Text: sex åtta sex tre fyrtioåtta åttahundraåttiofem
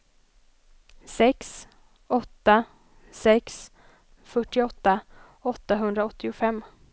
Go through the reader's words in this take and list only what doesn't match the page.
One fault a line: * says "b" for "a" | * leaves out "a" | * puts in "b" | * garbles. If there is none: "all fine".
* leaves out "tre"